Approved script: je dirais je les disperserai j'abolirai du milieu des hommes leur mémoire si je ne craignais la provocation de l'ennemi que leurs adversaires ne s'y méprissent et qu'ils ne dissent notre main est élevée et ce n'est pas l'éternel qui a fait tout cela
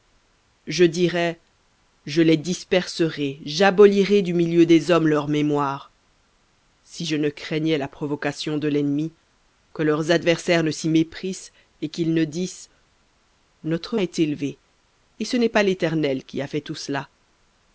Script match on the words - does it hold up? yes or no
no